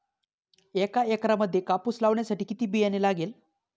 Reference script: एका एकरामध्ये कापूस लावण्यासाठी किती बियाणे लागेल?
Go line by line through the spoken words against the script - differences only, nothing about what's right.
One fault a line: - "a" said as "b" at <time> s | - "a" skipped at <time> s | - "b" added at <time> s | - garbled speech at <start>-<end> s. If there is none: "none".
none